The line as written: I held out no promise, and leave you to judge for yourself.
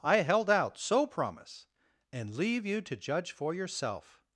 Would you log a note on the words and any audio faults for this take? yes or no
yes